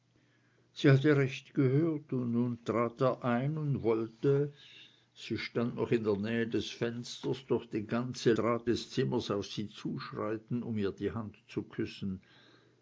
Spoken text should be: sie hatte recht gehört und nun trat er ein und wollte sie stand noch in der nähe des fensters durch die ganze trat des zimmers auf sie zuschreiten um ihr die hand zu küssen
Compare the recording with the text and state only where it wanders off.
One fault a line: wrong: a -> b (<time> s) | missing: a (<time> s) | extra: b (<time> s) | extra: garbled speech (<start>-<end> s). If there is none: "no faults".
no faults